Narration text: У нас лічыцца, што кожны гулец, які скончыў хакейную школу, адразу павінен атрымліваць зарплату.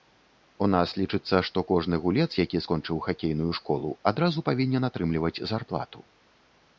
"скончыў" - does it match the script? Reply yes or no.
yes